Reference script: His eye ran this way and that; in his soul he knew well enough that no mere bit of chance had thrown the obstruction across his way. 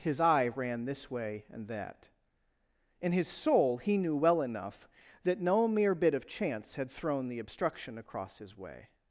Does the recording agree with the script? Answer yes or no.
yes